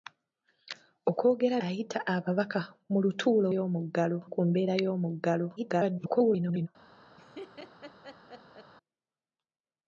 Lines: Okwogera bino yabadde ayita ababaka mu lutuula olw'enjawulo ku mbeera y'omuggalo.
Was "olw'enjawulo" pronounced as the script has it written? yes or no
no